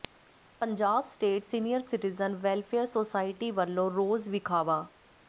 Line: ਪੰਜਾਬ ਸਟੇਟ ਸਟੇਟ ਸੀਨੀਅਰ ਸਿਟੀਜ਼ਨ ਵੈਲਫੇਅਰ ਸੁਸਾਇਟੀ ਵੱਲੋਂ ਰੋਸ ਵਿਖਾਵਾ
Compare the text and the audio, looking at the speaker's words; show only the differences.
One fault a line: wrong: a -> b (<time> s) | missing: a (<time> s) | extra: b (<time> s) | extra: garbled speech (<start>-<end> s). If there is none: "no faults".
missing: ਸਟੇਟ (1.4 s)